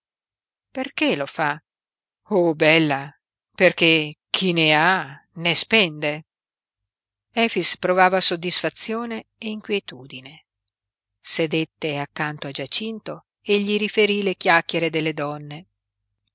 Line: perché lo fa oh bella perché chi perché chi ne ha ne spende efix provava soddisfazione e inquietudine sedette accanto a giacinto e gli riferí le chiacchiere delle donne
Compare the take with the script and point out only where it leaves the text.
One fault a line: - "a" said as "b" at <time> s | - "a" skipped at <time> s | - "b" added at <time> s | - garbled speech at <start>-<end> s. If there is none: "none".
- "perché chi" skipped at 4.5 s